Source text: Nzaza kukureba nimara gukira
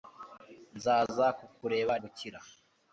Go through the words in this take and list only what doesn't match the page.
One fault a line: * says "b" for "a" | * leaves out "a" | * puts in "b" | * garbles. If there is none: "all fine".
* leaves out "nimara"